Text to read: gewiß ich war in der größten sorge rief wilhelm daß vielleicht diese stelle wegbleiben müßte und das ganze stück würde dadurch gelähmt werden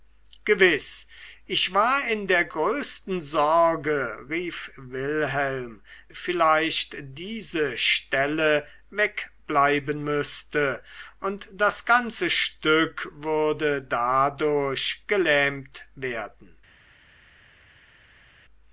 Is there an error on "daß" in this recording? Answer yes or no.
yes